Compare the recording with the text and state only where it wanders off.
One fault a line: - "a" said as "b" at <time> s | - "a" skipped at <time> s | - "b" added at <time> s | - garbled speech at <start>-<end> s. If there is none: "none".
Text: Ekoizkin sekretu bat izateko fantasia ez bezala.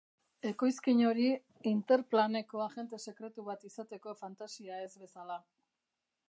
- "hori Interplaneko agente" added at 1.1 s